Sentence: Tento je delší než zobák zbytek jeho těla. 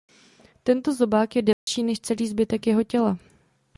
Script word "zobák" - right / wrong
wrong